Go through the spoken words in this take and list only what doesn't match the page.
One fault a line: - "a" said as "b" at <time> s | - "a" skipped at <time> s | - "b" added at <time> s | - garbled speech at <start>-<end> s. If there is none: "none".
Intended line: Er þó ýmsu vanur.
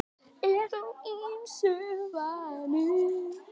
none